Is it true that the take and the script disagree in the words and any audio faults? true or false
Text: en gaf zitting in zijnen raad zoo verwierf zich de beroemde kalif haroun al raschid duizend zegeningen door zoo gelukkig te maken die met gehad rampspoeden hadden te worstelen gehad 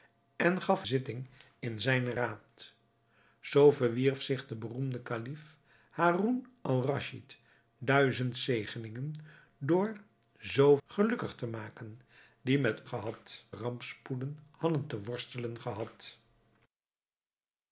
false